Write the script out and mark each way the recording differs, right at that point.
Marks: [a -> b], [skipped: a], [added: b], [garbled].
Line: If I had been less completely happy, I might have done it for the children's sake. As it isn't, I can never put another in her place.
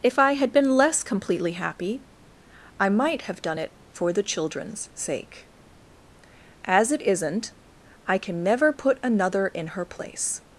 If I had been less completely happy, I might have done it for the children's sake. As it isn't, I can never put another in her place.